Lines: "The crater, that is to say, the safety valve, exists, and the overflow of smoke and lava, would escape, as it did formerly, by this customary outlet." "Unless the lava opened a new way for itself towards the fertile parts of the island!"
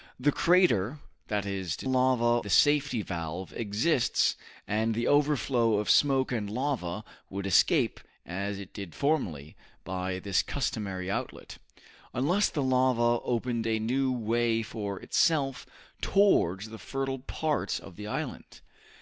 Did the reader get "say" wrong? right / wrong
wrong